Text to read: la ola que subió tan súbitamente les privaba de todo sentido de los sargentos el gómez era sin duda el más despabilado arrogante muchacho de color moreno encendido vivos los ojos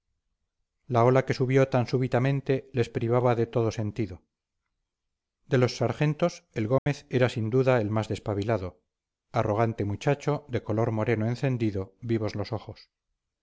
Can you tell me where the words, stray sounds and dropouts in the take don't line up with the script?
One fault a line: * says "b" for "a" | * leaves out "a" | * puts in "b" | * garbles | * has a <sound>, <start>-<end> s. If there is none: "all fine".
* has a dropout, 6.8-6.9 s